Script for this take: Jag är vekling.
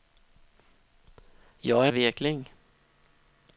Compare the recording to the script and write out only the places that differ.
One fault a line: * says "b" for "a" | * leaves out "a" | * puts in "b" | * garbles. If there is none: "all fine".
all fine